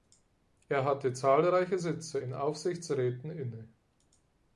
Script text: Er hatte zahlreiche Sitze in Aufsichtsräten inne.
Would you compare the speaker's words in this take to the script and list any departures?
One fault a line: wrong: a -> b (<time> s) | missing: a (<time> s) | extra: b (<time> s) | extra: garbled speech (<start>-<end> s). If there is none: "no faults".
no faults